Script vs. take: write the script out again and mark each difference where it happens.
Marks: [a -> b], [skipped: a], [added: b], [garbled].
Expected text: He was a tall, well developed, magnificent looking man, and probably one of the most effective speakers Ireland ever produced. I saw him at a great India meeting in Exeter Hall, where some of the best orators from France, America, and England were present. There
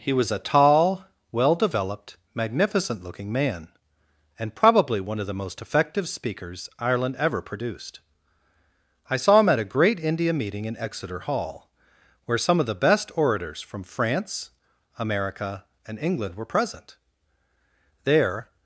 He was a tall, well developed, magnificent looking man, and probably one of the most effective speakers Ireland ever produced. I saw him at a great India meeting in Exeter Hall, where some of the best orators from France, America, and England were present. There